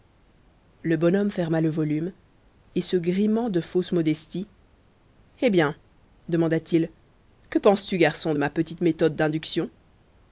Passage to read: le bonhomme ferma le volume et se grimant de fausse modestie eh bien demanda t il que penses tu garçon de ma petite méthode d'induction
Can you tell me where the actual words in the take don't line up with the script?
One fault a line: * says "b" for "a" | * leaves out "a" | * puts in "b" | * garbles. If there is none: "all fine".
all fine